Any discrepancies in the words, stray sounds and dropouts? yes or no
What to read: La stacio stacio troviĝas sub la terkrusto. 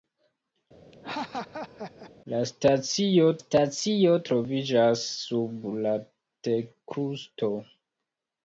yes